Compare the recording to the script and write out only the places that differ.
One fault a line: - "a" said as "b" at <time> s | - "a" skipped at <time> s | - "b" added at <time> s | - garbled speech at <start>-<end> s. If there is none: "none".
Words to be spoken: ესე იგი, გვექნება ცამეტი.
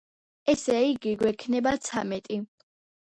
none